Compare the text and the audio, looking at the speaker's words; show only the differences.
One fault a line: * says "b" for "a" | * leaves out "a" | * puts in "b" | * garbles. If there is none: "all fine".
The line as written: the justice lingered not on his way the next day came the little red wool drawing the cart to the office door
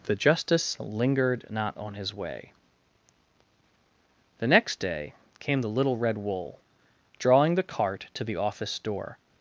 all fine